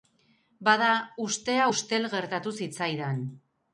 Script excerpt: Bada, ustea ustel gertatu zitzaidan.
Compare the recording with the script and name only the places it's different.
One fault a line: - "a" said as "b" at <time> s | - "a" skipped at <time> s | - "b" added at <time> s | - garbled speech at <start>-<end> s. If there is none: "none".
none